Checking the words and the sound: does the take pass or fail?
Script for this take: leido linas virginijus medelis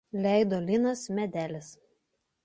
fail